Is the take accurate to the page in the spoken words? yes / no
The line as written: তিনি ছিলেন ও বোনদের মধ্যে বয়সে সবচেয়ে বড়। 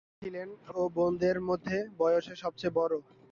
yes